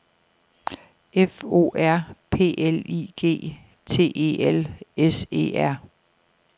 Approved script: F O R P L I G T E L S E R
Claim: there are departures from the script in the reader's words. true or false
false